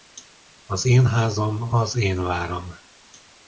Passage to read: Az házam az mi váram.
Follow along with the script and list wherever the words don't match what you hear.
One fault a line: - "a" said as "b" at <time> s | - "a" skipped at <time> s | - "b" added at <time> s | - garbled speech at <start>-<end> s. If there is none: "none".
- "én" added at 0.8 s
- "mi" said as "én" at 2.0 s